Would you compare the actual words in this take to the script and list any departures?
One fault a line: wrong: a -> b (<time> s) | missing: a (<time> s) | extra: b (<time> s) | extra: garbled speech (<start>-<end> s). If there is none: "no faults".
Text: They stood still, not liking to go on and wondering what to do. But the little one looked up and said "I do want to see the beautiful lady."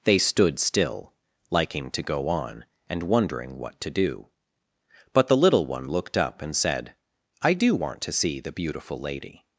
missing: not (1.1 s)